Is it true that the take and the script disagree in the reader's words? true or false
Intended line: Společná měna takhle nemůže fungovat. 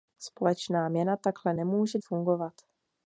false